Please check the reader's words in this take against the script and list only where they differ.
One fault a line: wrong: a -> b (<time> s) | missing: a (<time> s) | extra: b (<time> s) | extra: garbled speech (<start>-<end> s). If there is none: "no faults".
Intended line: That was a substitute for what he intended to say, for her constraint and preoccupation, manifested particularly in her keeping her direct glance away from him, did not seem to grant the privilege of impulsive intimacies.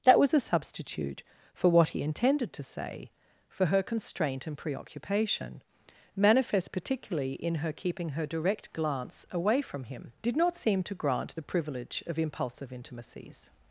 wrong: manifested -> manifest (6.1 s)